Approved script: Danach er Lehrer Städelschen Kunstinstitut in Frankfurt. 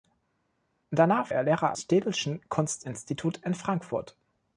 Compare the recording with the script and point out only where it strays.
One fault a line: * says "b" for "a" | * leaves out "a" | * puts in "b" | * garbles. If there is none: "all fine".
all fine